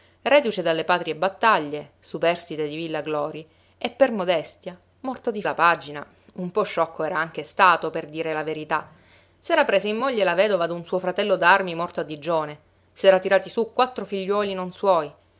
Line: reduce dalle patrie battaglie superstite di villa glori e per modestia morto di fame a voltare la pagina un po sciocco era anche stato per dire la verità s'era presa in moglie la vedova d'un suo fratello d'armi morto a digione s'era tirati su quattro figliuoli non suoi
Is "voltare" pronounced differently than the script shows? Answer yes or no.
yes